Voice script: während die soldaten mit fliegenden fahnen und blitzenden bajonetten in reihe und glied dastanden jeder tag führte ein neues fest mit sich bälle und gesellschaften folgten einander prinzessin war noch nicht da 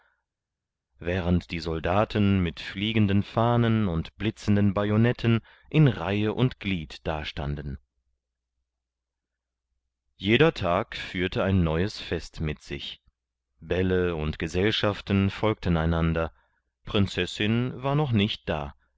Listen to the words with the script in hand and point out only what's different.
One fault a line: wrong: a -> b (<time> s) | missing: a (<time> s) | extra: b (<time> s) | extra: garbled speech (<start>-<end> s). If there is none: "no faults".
no faults